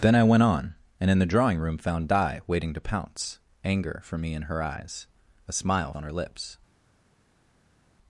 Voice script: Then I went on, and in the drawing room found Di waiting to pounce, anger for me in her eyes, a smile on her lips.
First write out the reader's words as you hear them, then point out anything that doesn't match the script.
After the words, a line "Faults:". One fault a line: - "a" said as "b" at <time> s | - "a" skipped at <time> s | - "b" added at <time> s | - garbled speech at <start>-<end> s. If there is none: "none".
Then I went on, and in the drawing room found Di waiting to pounce, anger for me in her eyes, a smile on her lips.
Faults:
none